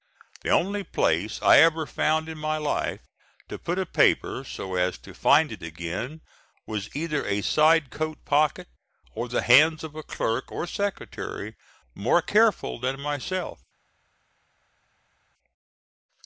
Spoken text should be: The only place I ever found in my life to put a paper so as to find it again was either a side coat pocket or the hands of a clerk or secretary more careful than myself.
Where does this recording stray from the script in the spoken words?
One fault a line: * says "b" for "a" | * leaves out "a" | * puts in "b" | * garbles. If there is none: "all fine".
all fine